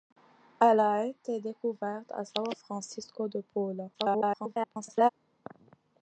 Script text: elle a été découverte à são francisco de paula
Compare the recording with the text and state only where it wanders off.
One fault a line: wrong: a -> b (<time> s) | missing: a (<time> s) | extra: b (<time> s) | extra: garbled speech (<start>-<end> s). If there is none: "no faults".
extra: garbled speech (3.9-5.1 s)